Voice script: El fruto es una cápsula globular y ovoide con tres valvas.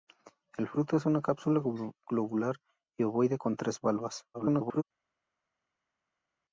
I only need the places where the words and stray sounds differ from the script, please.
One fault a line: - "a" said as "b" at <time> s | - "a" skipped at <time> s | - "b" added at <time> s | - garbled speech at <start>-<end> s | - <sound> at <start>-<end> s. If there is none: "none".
- garbled speech at 4.3-4.8 s